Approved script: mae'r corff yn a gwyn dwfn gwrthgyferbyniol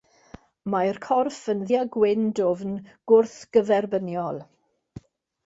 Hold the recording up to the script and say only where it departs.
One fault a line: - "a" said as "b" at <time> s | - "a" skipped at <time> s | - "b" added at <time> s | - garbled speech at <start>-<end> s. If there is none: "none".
none